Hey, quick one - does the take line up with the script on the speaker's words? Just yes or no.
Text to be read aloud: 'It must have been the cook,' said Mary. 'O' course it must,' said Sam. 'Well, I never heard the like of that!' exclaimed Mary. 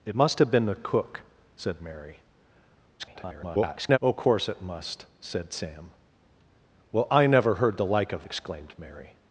no